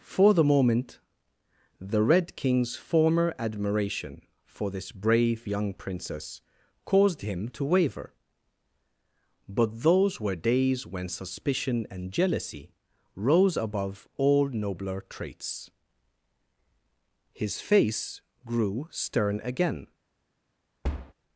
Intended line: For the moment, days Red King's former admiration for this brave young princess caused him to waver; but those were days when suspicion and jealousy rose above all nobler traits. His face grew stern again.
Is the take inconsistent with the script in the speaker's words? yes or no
yes